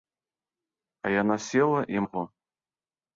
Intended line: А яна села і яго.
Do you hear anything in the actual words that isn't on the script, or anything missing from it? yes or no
no